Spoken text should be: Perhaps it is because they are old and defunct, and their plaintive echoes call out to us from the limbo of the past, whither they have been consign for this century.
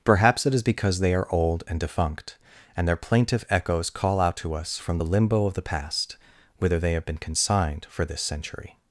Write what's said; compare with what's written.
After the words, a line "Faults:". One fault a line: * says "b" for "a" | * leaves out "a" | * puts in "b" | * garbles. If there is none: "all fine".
Perhaps it is because they are old and defunct, and their plaintive echoes call out to us from the limbo of the past, whither they have been consigned for this century.
Faults:
* says "consigned" for "consign"